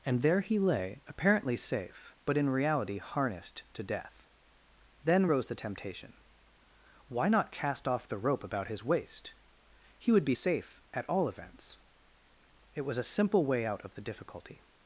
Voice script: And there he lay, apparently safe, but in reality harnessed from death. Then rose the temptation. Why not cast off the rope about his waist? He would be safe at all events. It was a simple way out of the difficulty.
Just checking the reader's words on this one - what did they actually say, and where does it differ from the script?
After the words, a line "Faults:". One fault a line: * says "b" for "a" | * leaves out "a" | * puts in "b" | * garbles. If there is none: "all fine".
And there he lay, apparently safe, but in reality harnessed to death. Then rose the temptation. Why not cast off the rope about his waist? He would be safe at all events. It was a simple way out of the difficulty.
Faults:
* says "to" for "from"